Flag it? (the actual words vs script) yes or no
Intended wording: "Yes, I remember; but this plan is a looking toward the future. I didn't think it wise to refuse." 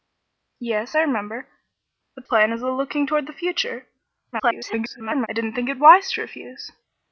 yes